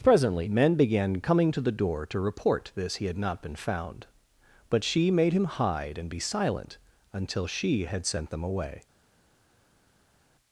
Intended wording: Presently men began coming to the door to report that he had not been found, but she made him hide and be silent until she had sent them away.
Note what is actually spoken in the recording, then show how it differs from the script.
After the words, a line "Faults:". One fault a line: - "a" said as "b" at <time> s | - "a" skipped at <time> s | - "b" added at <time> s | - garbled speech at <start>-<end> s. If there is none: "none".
Presently men began coming to the door to report this he had not been found, but she made him hide and be silent until she had sent them away.
Faults:
- "that" said as "this" at 2.7 s